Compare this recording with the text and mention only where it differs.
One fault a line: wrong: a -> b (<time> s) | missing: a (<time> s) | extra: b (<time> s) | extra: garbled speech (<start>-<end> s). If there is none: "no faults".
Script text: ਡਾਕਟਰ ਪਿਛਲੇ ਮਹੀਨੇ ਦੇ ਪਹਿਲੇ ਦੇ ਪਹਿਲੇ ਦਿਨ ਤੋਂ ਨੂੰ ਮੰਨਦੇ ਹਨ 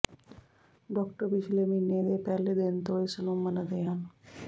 missing: ਦੇ ਪਹਿਲੇ (2.5 s)
extra: ਇਸ (3.0 s)